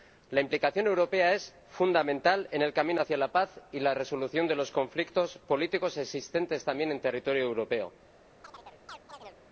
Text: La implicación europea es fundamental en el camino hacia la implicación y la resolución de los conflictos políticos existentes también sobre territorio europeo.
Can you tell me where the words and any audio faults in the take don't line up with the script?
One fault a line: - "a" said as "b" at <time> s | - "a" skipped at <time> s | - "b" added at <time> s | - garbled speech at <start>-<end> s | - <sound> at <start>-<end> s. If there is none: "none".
- "implicación" said as "paz" at 3.3 s
- "sobre" said as "en" at 6.9 s
- chirp at 8.4-9.4 s